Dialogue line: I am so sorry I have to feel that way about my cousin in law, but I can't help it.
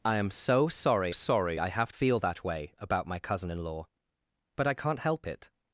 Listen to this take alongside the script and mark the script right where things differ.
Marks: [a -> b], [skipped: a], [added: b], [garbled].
I am so sorry [added: sorry] I have [skipped: to] feel that way about my cousin in law, but I can't help it.